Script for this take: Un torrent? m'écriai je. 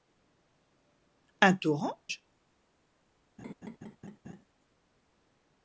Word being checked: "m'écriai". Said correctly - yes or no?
no